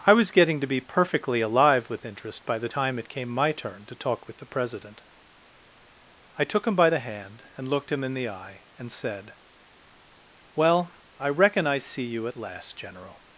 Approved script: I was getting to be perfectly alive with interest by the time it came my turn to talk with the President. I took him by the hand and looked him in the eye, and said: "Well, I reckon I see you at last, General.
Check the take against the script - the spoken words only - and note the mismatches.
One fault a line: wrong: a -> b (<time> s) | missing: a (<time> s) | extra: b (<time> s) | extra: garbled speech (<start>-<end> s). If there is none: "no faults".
no faults